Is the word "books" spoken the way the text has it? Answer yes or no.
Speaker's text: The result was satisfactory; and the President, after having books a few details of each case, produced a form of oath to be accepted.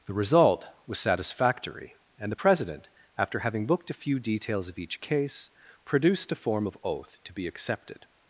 no